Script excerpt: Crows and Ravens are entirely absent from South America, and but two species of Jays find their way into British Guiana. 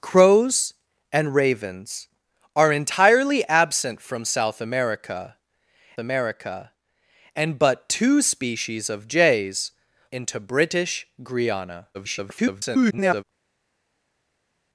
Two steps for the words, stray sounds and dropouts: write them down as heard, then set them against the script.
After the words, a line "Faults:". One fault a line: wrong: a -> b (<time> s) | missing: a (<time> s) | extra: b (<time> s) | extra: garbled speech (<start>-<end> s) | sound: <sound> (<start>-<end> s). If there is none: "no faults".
Crows and Ravens are entirely absent from South America America, and but two species of Jays into British Guiana. [garbled]
Faults:
extra: America (6.0 s)
missing: find their way (9.7 s)
extra: garbled speech (11.9-13.2 s)